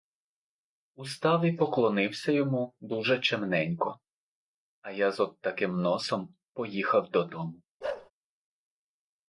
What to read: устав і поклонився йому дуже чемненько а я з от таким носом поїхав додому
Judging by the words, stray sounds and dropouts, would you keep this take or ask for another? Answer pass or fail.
fail